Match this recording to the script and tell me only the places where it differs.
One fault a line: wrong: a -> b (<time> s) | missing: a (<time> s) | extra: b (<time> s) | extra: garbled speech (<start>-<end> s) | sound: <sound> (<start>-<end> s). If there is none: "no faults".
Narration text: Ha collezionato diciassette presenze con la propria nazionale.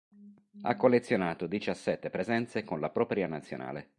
no faults